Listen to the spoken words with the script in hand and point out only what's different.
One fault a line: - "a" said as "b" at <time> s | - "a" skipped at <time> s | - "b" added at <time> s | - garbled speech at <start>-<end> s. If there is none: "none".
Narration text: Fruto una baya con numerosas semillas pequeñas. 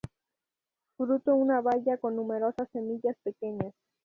none